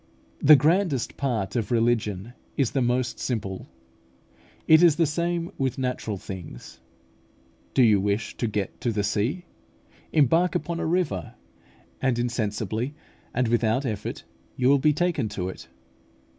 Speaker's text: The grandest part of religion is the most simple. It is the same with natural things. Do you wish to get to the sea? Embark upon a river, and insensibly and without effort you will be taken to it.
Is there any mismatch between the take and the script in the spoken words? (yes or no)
no